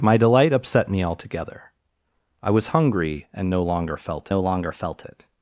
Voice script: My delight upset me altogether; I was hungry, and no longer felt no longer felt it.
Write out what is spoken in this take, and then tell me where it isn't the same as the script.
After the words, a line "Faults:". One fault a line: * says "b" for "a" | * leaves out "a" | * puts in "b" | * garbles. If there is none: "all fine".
My delight upset me altogether; I was hungry, and no longer felt no longer felt it.
Faults:
all fine